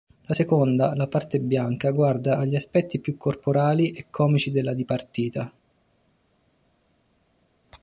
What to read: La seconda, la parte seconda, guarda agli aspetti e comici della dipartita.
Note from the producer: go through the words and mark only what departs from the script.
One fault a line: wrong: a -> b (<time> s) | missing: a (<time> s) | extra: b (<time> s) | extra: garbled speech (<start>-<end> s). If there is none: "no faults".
wrong: seconda -> bianca (1.4 s)
extra: più corporali (3.0 s)